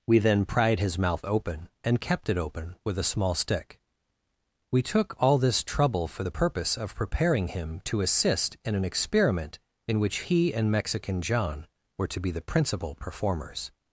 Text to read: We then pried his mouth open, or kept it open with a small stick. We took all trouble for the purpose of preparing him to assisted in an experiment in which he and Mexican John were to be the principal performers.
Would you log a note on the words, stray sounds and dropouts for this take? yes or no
yes